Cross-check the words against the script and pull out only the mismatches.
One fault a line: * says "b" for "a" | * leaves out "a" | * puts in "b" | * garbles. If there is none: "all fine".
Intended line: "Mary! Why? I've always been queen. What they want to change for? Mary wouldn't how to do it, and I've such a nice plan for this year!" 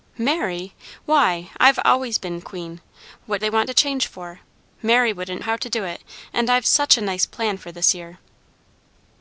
all fine